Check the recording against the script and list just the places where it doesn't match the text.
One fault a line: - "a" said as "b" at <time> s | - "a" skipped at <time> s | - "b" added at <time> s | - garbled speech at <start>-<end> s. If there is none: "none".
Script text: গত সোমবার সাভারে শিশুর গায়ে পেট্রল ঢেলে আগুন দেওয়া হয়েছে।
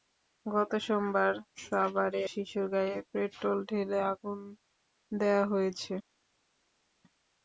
none